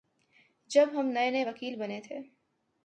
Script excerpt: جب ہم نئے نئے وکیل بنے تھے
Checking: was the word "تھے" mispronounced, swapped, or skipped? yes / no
no